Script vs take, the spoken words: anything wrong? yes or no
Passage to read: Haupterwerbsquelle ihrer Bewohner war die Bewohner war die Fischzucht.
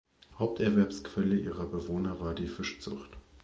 yes